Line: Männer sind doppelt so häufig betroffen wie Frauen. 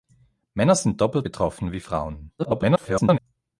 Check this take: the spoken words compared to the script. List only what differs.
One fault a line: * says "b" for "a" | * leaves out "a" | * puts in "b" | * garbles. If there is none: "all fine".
* leaves out "so häufig"
* garbles